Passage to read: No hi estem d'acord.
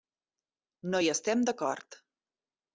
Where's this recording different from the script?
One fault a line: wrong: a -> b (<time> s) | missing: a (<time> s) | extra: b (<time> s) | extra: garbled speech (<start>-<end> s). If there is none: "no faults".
no faults